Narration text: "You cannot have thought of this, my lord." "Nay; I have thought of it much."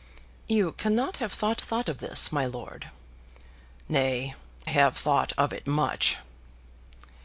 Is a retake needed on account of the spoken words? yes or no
yes